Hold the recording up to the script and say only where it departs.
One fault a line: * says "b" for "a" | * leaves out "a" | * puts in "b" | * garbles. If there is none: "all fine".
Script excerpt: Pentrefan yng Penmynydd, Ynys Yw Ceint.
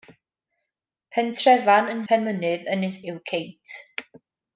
all fine